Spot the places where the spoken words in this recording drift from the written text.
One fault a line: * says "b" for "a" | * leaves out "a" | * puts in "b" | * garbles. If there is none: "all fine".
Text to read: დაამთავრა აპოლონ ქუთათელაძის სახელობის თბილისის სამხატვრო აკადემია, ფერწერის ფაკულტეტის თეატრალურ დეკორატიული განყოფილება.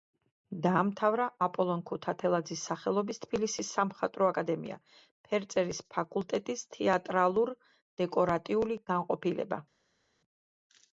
all fine